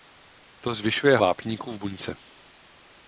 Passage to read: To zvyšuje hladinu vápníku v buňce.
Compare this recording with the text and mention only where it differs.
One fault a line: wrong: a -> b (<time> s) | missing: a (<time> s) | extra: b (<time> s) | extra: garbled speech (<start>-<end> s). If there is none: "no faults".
missing: hladinu (1.2 s)